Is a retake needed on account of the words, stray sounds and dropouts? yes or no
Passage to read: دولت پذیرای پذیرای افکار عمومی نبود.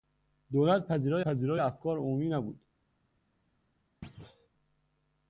yes